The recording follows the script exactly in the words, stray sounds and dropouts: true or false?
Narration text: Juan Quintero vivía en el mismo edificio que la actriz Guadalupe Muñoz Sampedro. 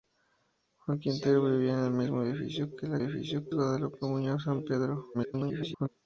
false